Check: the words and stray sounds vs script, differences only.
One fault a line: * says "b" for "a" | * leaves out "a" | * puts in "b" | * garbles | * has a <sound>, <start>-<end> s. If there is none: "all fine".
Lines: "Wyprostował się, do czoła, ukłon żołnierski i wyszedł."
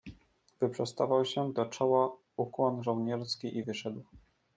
all fine